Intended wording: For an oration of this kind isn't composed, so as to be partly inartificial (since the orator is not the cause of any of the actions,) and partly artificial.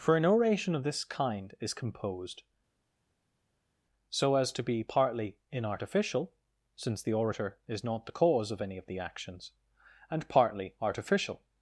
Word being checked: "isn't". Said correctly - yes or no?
no